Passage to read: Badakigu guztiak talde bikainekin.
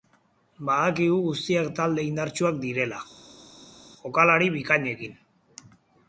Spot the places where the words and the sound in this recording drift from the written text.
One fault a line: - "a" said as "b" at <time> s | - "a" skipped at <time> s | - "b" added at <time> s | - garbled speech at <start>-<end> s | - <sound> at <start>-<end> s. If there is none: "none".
- "indartsuak direla jokalari" added at 2.1 s